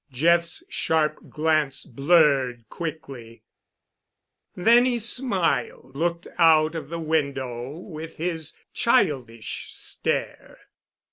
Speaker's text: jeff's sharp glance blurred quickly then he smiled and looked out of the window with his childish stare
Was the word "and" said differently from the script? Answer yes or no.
yes